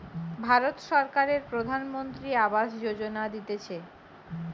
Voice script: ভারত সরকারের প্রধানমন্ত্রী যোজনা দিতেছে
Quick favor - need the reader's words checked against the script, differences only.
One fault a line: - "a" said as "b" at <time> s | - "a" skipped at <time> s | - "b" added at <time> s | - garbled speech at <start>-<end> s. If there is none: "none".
- "আবাস" added at 2.5 s